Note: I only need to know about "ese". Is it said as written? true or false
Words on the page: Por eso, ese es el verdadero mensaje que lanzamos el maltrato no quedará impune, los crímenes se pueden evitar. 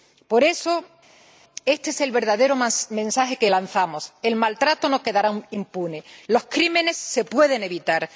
false